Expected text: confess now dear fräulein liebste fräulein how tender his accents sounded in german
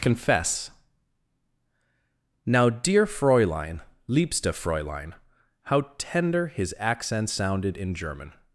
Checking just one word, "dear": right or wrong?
right